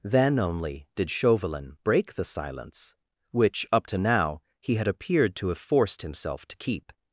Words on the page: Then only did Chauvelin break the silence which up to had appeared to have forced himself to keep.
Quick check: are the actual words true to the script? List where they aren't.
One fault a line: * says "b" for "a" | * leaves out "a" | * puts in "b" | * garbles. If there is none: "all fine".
* puts in "now he"